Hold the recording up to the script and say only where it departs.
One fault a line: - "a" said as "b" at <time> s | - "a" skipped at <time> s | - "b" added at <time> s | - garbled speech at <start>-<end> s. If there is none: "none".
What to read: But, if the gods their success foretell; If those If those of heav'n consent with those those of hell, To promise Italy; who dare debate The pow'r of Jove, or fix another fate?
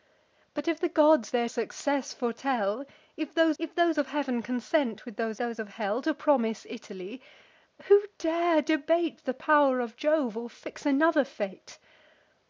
none